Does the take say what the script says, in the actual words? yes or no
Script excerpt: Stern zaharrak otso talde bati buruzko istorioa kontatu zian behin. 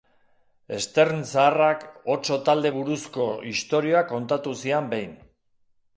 no